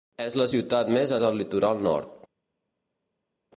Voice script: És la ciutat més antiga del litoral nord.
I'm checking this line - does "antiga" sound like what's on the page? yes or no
no